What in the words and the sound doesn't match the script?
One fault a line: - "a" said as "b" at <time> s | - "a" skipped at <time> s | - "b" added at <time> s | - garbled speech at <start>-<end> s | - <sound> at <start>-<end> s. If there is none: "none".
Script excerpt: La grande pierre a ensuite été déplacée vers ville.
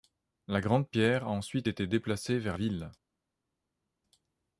none